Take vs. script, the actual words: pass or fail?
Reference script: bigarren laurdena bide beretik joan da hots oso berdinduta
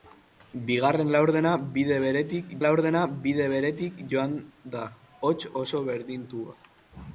fail